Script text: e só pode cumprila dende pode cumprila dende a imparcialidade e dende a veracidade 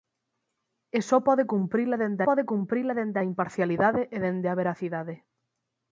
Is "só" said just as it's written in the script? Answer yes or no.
yes